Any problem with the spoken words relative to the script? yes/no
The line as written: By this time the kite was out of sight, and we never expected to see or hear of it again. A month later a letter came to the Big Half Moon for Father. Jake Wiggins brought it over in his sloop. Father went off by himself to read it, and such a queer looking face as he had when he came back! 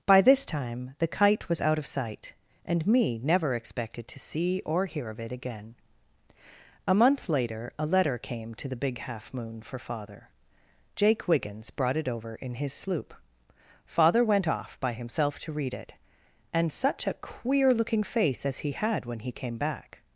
yes